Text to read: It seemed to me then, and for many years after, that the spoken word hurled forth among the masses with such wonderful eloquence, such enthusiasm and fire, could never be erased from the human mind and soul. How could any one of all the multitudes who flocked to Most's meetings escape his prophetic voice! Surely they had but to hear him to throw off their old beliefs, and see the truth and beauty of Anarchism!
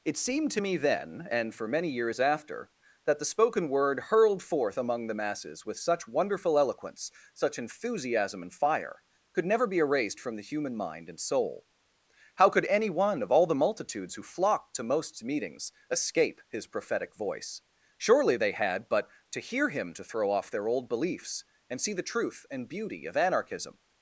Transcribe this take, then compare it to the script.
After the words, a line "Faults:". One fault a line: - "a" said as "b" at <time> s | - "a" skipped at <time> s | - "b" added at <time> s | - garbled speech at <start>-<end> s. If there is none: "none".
It seemed to me then, and for many years after, that the spoken word hurled forth among the masses with such wonderful eloquence, such enthusiasm and fire, could never be erased from the human mind and soul. How could any one of all the multitudes who flocked to Most's meetings escape his prophetic voice! Surely they had but to hear him to throw off their old beliefs, and see the truth and beauty of Anarchism!
Faults:
none